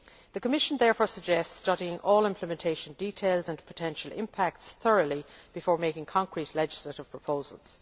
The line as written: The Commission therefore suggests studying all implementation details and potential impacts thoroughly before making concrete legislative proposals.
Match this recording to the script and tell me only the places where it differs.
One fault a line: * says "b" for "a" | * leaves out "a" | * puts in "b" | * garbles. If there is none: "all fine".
all fine